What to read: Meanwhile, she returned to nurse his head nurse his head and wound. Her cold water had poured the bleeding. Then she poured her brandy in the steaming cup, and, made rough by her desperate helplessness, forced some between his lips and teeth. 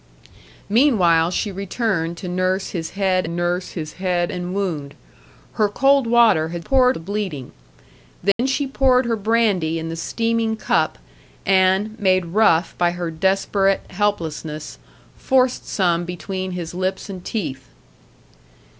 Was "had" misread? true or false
false